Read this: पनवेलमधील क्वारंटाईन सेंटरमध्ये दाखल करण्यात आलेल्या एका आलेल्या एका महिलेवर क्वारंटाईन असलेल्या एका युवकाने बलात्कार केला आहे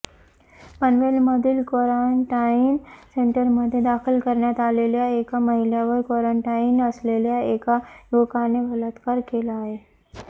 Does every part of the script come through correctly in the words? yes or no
no